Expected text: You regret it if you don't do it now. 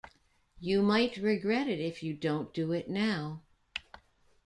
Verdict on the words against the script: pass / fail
fail